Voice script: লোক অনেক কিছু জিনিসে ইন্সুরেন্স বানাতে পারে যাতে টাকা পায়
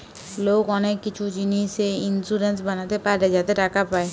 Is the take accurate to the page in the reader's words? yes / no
yes